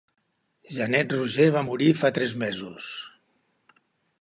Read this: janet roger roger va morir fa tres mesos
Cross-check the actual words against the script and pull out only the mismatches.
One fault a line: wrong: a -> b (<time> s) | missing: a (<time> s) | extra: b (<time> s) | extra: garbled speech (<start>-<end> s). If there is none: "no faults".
missing: roger (1.4 s)